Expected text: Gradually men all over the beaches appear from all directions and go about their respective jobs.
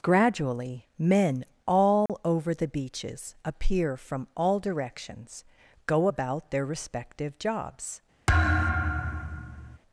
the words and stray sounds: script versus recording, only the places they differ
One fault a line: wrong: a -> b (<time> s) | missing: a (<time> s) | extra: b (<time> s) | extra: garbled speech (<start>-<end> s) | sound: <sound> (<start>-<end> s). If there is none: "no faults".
sound: dropout (2.1-2.1 s)
missing: and (5.4 s)
sound: thud (8.3-9.8 s)